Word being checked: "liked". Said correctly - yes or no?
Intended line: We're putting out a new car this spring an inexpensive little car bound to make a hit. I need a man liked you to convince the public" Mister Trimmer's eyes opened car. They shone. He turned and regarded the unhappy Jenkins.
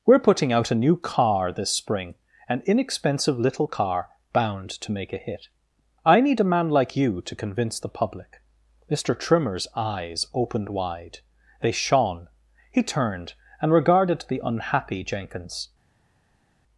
no